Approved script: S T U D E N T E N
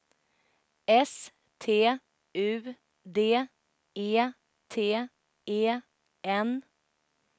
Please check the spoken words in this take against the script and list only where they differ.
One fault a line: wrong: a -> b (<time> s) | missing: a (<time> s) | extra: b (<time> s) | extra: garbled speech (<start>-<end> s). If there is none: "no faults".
missing: N (4.3 s)